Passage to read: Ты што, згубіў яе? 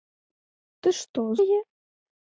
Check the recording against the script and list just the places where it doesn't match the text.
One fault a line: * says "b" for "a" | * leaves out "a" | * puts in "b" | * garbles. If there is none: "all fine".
* leaves out "згубіў"